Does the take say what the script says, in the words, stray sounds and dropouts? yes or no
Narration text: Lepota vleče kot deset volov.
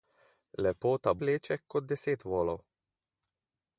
yes